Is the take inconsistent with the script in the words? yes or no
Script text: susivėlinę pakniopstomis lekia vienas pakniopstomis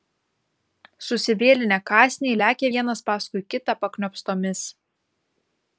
yes